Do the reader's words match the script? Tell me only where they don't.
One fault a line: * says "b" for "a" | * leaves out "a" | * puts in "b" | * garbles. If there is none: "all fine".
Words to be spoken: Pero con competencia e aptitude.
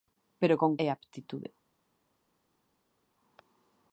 * leaves out "competencia"